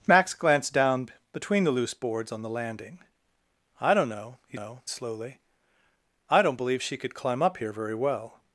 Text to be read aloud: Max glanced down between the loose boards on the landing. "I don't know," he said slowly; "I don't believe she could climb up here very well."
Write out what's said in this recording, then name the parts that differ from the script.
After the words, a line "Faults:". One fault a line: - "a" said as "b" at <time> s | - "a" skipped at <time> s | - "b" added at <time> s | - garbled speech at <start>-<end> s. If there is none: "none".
Max glanced down between the loose boards on the landing. "I don't know," he know slowly; "I don't believe she could climb up here very well."
Faults:
- "said" said as "know" at 4.5 s